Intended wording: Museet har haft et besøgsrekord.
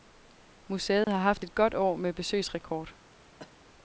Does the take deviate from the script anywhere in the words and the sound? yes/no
yes